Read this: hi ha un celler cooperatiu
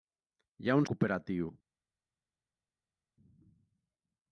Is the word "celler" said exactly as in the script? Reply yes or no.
no